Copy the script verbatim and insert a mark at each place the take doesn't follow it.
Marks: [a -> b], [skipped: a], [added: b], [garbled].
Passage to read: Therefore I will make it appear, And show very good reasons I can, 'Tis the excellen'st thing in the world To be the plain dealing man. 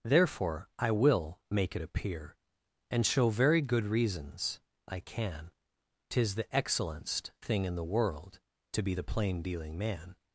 Therefore I will make it appear, And show very good reasons I can, 'Tis the excellen'st thing in the world To be the plain dealing man.